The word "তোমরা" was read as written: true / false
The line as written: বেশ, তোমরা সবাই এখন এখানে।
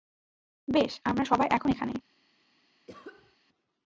false